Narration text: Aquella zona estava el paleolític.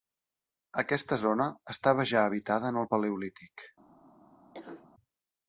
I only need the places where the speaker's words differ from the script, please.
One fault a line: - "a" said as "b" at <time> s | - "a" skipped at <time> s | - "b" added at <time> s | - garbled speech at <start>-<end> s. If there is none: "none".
- "Aquella" said as "Aquesta" at 0.8 s
- "ja habitada en" added at 2.1 s